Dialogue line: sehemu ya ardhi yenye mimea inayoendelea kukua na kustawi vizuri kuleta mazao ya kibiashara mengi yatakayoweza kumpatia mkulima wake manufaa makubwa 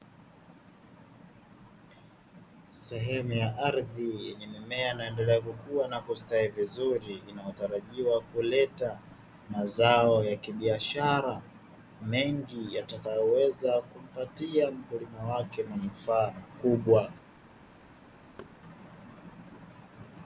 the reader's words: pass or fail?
fail